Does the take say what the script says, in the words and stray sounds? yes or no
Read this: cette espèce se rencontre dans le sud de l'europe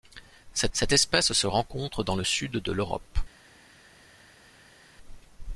no